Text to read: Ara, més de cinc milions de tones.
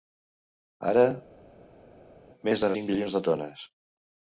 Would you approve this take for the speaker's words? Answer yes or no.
yes